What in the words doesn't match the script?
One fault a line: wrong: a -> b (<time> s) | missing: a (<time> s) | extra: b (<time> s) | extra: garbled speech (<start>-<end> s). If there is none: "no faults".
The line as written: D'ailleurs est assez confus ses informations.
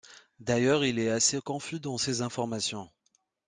extra: il (0.8 s)
extra: dans (1.8 s)